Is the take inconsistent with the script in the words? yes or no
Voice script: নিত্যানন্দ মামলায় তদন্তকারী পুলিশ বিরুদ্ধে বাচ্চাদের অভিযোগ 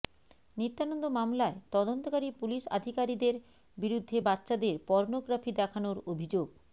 yes